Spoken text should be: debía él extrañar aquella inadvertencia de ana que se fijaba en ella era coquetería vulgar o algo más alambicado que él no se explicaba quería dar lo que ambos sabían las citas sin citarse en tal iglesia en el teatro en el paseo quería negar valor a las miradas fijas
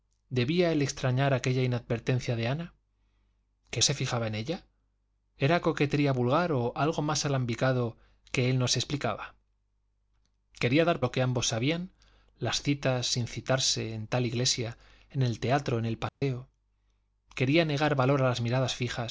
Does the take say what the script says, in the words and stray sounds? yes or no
no